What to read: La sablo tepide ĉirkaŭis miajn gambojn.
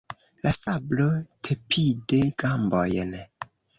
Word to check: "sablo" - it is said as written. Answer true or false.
true